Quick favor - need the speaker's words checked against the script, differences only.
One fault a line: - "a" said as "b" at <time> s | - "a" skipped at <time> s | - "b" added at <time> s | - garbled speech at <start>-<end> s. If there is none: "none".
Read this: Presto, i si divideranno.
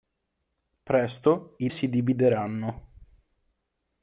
none